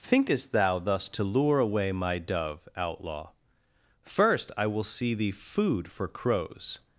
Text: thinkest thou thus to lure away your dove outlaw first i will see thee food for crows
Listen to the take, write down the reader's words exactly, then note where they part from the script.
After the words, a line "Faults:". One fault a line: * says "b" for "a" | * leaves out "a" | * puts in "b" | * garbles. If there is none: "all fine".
thinkest thou thus to lure away my dove outlaw first i will see thee food for crows
Faults:
* says "my" for "your"